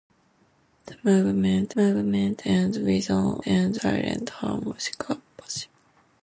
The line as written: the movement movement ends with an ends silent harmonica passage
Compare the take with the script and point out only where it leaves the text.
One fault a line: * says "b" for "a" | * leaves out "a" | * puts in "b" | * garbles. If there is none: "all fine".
all fine